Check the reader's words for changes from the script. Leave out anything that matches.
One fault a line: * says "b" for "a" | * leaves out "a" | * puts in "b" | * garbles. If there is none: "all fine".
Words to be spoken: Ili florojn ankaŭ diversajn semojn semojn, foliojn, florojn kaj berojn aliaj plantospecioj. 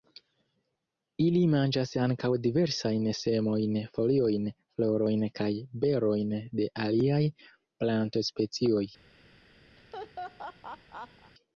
* says "manĝas" for "florojn"
* leaves out "semojn"
* puts in "de"